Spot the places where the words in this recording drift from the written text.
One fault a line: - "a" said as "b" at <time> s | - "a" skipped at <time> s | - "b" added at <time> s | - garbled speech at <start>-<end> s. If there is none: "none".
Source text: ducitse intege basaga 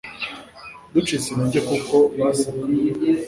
- "kuko" added at 1.7 s